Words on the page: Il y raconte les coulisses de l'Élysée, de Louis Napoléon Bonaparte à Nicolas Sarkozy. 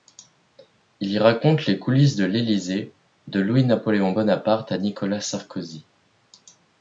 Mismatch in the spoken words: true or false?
false